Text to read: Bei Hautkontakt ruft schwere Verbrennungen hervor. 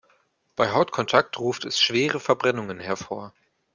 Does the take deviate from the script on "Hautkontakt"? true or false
false